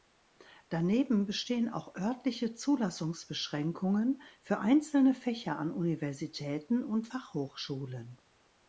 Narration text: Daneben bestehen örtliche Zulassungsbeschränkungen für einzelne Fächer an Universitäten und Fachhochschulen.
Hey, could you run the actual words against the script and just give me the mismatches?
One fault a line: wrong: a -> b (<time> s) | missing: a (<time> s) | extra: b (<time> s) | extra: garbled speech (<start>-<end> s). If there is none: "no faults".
extra: auch (1.7 s)